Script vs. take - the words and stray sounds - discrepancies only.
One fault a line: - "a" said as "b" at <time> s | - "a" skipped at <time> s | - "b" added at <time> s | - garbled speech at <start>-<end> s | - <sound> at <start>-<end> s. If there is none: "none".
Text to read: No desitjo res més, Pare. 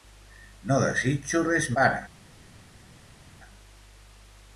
- "més" skipped at 1.7 s